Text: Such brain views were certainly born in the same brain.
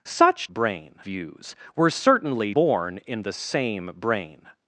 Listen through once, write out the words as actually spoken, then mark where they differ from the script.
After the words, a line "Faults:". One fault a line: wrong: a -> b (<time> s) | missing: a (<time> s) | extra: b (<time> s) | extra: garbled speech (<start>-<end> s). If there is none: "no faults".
Such brain views were certainly born in the same brain.
Faults:
no faults